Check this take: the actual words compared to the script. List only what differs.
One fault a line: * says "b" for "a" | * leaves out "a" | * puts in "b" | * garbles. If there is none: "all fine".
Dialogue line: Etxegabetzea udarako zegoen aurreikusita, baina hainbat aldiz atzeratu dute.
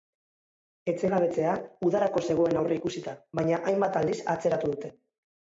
all fine